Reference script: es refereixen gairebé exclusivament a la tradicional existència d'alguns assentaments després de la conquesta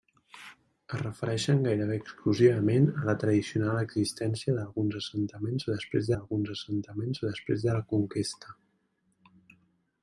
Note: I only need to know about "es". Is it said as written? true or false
true